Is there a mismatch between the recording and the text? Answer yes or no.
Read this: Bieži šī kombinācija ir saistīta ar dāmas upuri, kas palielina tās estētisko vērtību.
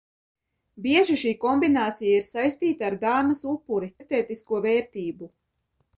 yes